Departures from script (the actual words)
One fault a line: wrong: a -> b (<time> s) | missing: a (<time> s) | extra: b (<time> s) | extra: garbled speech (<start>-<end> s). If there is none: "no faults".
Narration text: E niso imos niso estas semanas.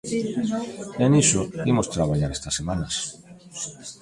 wrong: niso -> traballar (1.9 s)